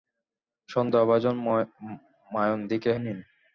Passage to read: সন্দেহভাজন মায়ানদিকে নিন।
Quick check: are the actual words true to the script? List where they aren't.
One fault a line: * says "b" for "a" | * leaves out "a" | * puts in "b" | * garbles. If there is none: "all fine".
all fine